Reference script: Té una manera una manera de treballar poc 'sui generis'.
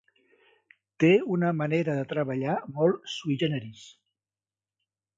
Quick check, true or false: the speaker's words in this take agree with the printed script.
false